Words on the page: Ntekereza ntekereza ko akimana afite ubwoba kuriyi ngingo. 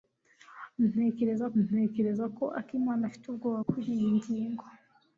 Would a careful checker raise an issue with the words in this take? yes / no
no